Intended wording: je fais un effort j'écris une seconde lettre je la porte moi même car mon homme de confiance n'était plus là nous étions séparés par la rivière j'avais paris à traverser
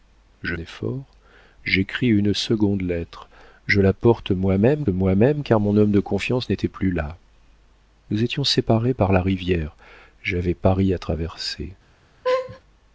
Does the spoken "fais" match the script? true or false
false